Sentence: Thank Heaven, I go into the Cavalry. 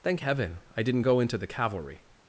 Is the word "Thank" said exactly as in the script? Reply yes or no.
yes